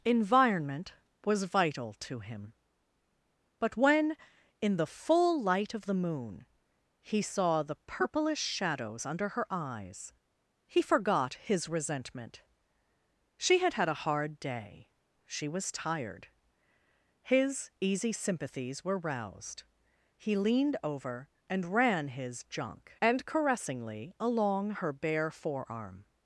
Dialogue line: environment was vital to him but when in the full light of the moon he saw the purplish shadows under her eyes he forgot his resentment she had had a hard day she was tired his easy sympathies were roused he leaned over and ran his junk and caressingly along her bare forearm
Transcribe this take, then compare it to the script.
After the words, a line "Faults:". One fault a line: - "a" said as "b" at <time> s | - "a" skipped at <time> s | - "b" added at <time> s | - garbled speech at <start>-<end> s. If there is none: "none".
environment was vital to him but when in the full light of the moon he saw the purplish shadows under her eyes he forgot his resentment she had had a hard day she was tired his easy sympathies were roused he leaned over and ran his junk and caressingly along her bare forearm
Faults:
none